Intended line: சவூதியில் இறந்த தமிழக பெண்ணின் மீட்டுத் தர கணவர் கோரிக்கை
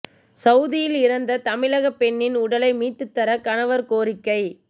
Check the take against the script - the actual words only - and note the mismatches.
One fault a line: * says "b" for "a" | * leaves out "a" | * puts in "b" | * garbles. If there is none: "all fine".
* puts in "உடலை"